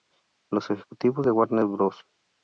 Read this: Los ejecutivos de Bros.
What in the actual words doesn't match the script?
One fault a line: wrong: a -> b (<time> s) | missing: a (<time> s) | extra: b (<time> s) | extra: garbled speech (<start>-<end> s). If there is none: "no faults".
extra: Warner (1.3 s)